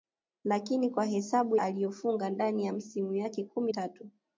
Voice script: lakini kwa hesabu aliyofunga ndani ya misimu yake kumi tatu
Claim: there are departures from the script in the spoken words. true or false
false